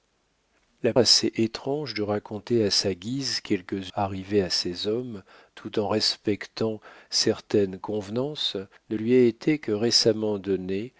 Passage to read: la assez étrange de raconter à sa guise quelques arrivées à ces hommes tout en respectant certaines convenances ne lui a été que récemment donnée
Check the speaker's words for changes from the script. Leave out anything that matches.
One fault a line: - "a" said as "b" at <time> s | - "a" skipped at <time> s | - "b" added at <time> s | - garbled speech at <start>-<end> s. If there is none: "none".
none